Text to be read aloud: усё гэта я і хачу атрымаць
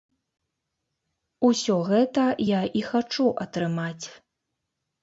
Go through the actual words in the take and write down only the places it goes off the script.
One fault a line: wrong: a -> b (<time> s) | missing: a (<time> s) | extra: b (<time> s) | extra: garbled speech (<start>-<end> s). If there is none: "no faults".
no faults